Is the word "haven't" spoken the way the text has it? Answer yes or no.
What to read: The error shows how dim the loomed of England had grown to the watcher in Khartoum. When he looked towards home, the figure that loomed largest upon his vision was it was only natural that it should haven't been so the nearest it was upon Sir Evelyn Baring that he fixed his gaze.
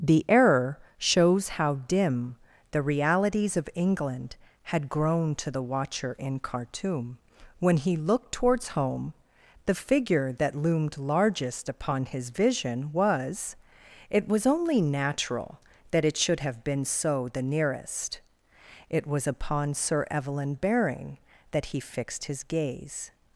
no